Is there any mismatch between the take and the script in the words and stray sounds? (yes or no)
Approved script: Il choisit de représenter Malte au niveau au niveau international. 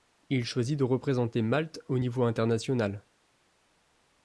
yes